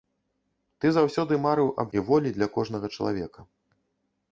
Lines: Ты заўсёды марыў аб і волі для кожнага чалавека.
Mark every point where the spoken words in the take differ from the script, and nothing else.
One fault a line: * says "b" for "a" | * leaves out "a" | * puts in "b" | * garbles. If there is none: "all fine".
all fine